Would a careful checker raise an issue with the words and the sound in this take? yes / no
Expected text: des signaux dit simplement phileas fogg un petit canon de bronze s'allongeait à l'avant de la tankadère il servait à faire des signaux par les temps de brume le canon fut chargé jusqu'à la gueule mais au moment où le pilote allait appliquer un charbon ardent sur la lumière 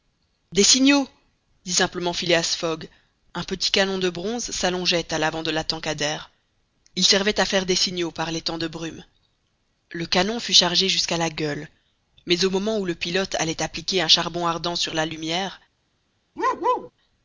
yes